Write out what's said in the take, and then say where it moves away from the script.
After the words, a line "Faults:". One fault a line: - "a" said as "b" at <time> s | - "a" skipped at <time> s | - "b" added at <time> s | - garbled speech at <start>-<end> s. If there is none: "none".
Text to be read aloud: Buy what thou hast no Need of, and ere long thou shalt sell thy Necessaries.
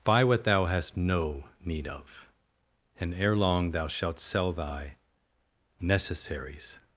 Buy what thou hast no Need of, and ere long thou shalt sell thy Necessaries.
Faults:
none